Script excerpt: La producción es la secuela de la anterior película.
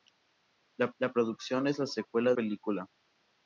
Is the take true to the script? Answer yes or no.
no